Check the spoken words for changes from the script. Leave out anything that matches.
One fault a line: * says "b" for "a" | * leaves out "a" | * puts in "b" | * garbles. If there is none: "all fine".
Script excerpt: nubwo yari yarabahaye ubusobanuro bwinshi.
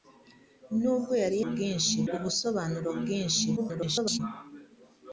* says "bwinshi" for "yarabahaye"
* garbles